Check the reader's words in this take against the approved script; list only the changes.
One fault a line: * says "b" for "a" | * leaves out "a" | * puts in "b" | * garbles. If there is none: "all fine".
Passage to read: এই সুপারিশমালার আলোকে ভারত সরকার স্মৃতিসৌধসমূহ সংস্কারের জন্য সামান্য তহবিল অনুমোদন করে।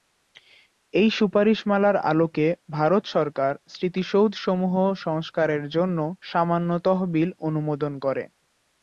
all fine